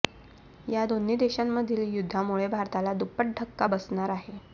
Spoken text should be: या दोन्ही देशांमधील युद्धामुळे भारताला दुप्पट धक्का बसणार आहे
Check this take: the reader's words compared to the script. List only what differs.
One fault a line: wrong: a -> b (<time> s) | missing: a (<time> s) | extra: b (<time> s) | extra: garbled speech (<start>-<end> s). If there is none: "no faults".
no faults